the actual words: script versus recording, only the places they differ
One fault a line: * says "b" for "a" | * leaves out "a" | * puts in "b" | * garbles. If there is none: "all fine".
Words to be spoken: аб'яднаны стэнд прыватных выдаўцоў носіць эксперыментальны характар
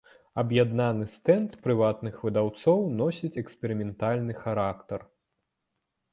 all fine